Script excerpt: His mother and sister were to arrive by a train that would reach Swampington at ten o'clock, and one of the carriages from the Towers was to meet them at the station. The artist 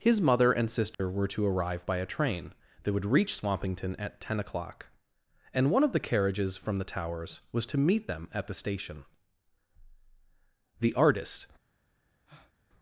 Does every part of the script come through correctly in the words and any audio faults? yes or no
no